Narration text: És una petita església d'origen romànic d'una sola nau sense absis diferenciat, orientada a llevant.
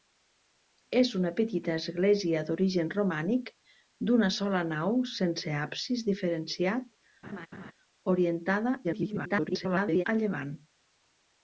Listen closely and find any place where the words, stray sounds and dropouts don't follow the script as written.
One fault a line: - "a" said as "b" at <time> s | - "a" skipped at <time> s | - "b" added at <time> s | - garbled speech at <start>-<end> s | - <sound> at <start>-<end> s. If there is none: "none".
- laugh at 7.2-7.7 s
- garbled speech at 8.8-10.0 s